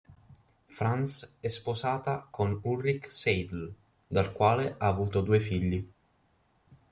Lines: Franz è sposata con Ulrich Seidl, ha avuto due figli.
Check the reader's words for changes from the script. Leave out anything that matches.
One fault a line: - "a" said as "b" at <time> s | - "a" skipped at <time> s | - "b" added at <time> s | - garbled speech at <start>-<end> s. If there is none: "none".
- "dal quale" added at 4.1 s